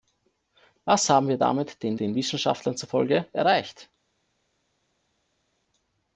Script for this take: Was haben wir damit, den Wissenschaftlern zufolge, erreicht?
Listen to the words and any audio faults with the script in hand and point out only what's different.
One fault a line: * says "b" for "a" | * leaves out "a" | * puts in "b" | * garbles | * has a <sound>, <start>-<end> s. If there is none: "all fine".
* puts in "den"